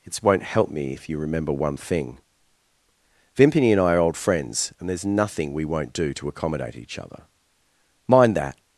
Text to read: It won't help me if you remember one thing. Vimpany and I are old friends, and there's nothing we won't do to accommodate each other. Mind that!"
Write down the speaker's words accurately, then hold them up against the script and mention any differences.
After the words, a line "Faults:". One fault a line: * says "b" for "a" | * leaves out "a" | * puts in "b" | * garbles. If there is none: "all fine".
It won't help me if you remember one thing. Vimpany and I are old friends, and there's nothing we won't do to accommodate each other. Mind that!"
Faults:
all fine